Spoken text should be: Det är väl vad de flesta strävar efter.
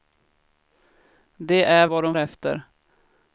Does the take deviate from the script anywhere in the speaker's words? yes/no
yes